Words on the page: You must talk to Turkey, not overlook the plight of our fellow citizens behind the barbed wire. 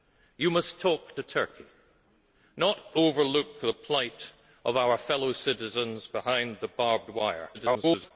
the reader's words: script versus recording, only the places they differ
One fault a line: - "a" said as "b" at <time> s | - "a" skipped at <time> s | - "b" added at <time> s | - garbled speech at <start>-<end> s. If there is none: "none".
- garbled speech at 7.5-8.1 s